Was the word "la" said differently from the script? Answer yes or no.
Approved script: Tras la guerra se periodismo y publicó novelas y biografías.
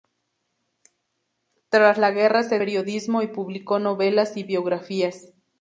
no